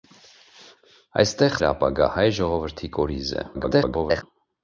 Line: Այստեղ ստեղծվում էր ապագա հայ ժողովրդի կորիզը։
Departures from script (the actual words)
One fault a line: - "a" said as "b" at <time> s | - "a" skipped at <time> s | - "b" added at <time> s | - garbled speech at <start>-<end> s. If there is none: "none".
- "ստեղծվում" skipped at 1.6 s
- garbled speech at 3.5-4.2 s